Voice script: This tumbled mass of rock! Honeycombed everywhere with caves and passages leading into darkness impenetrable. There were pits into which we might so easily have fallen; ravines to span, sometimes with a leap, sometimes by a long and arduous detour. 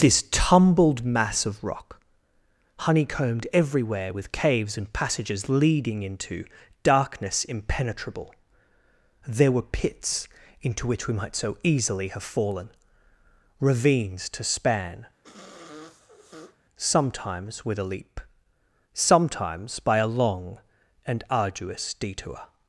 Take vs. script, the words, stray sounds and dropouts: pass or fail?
fail